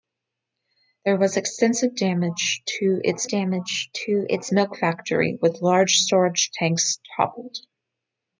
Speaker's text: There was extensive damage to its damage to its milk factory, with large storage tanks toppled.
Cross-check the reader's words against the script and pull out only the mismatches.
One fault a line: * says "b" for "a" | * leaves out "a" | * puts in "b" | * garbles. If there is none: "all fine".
all fine